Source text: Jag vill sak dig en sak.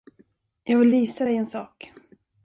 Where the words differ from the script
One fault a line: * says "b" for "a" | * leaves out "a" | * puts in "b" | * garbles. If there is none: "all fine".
* says "visa" for "sak"